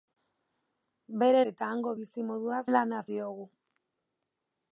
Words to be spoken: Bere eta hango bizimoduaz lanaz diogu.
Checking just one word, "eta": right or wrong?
right